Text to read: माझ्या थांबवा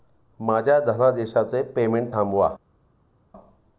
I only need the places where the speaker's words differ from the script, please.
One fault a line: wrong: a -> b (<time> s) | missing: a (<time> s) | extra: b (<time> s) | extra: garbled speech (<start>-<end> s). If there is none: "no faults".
extra: धनादेशाचे पेमेंट (0.8 s)